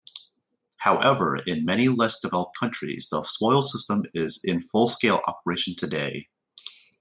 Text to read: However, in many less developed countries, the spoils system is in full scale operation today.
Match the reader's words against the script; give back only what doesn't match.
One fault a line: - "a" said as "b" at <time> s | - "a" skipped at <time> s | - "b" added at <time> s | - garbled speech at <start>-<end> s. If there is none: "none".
none